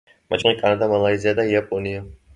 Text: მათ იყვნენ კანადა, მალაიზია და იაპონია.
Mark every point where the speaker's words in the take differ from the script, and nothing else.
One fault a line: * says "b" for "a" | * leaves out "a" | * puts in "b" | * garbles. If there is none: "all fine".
all fine